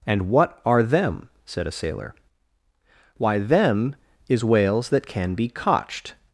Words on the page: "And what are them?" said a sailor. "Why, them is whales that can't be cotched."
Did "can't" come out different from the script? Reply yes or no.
yes